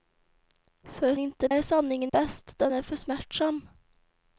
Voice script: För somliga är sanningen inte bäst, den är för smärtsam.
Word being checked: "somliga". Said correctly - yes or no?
no